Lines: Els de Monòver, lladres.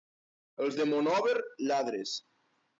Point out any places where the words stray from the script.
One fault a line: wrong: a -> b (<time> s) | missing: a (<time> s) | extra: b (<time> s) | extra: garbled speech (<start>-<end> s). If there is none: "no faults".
no faults